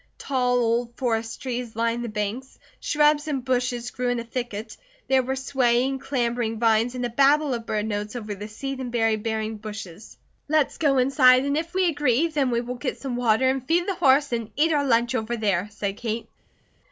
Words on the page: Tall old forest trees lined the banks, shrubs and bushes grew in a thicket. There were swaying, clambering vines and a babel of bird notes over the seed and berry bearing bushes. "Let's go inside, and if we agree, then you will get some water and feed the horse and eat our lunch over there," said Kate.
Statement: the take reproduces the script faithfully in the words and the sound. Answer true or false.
false